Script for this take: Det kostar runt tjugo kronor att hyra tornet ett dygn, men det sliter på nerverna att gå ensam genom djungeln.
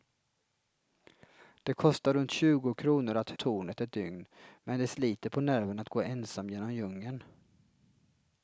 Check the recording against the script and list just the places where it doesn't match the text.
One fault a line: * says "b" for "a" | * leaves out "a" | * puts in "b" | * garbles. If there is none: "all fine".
* leaves out "hyra"